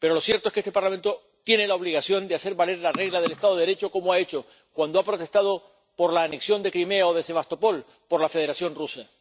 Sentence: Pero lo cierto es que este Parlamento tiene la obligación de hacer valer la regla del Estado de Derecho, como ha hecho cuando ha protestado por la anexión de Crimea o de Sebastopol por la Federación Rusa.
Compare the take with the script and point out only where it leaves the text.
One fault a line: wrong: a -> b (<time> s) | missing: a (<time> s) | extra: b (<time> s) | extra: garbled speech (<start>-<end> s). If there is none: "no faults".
no faults